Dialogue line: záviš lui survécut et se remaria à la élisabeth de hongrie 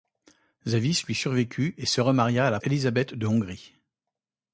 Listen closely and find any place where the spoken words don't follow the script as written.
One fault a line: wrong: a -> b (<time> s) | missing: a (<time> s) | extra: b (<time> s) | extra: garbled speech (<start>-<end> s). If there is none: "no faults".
no faults